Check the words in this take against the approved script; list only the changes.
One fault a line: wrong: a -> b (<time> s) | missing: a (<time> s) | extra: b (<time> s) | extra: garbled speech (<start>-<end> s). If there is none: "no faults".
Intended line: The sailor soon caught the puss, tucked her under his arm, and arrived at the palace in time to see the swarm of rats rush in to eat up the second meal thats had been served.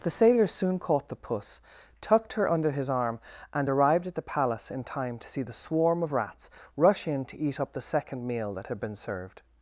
wrong: thats -> that (8.5 s)